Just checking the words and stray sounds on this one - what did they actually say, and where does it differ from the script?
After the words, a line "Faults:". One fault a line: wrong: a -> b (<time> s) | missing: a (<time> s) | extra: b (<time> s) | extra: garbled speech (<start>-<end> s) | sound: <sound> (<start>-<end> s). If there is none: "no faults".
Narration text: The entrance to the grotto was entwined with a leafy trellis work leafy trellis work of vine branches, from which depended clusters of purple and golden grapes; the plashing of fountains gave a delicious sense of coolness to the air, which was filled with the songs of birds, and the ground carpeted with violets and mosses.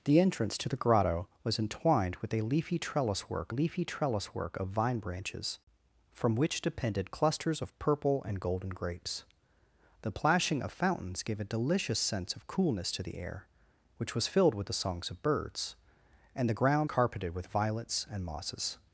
The entrance to the grotto was entwined with a leafy trellis work leafy trellis work of vine branches, from which depended clusters of purple and golden grapes; the plashing of fountains gave a delicious sense of coolness to the air, which was filled with the songs of birds, and the ground carpeted with violets and mosses.
Faults:
no faults